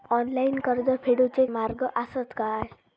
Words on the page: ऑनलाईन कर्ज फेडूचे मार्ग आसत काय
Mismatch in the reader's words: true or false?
false